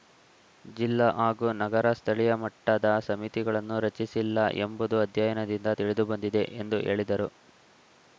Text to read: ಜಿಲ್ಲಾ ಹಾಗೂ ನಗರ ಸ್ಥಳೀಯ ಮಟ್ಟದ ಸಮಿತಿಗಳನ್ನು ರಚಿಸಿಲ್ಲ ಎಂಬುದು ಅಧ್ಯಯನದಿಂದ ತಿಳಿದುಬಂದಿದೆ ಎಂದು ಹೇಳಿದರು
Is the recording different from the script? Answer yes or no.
no